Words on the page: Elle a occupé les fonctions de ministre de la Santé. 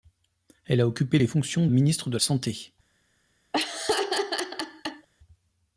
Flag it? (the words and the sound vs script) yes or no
yes